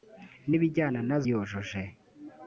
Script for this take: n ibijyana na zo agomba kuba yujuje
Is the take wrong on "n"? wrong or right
right